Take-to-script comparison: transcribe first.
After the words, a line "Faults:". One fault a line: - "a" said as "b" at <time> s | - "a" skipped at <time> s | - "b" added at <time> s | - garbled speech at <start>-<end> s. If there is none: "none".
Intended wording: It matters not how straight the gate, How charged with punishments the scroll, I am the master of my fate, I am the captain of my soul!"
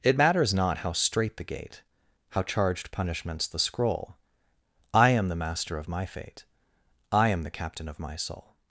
It matters not how straight the gate, How charged punishments the scroll, I am the master of my fate, I am the captain of my soul!"
Faults:
- "with" skipped at 2.9 s